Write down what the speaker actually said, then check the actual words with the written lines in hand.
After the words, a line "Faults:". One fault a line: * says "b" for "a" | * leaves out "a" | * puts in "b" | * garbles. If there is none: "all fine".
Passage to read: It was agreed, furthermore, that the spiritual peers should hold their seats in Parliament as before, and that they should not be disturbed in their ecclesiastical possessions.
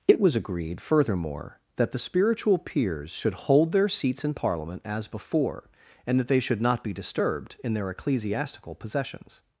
It was agreed, furthermore, that the spiritual peers should hold their seats in Parliament as before, and that they should not be disturbed in their ecclesiastical possessions.
Faults:
all fine